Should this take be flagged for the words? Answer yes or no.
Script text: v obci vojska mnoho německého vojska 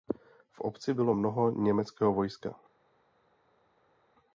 yes